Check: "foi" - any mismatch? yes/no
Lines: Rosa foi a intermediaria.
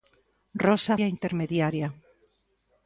yes